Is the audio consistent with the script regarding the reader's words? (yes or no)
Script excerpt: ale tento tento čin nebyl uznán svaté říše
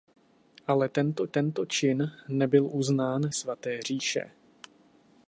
yes